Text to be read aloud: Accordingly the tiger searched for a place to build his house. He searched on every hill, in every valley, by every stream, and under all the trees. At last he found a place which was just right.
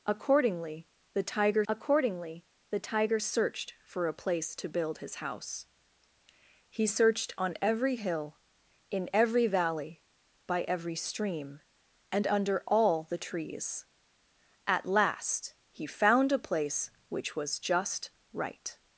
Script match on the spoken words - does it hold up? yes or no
no